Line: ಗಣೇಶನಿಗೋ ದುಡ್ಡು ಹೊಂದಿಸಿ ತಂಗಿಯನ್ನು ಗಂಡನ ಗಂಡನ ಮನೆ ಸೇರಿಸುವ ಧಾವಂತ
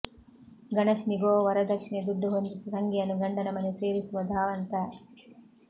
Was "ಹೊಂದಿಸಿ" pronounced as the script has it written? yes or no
yes